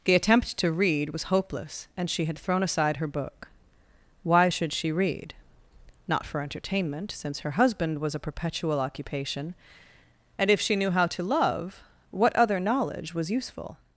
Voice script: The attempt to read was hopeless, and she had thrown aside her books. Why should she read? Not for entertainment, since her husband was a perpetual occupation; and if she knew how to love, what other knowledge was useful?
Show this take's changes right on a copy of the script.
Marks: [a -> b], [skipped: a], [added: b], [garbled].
The attempt to read was hopeless, and she had thrown aside her [books. -> book] Why should she read? Not for entertainment, since her husband was a perpetual occupation; and if she knew how to love, what other knowledge was useful?